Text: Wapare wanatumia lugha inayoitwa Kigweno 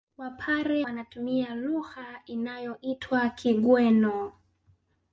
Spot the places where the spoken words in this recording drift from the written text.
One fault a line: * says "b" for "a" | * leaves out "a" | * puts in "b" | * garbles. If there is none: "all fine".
all fine